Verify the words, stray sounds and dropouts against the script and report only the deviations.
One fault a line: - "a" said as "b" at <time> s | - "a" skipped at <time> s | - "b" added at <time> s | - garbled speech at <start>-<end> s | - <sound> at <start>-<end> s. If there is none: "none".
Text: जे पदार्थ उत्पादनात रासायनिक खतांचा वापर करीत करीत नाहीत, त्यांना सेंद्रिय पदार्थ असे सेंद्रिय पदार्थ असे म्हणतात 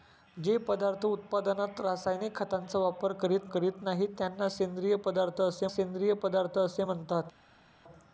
none